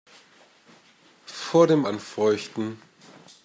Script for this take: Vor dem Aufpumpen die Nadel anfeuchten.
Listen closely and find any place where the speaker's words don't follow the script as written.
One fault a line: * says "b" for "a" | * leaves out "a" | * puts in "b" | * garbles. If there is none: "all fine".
* leaves out "Aufpumpen die Nadel"